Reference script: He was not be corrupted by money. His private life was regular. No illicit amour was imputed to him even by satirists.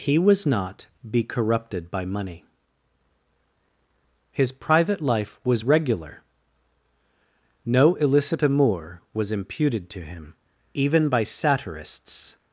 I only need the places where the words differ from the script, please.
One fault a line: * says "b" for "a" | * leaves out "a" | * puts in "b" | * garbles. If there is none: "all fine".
all fine